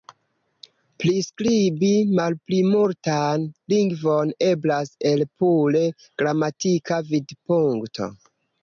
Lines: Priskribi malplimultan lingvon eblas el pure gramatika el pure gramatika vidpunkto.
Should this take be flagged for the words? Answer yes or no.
yes